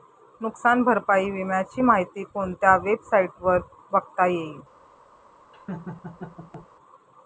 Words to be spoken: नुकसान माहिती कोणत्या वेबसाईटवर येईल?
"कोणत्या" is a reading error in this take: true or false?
false